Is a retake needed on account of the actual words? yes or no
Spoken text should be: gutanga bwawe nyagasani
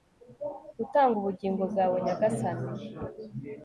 yes